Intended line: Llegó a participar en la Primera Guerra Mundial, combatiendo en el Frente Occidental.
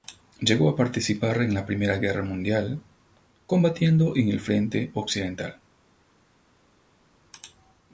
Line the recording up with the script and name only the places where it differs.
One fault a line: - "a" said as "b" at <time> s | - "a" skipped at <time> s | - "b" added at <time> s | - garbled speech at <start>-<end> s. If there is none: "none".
none